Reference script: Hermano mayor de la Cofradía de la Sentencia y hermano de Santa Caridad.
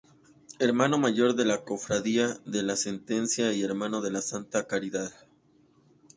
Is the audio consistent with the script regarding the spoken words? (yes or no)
no